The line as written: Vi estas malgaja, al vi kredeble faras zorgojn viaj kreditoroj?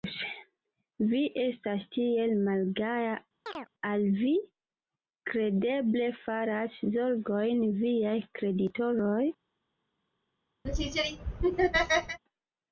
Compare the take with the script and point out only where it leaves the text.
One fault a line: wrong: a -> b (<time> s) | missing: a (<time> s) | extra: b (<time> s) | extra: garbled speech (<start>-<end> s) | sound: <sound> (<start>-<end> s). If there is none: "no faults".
extra: tiel (2.0 s)
sound: chirp (3.5-3.7 s)
sound: laugh (10.6-12.2 s)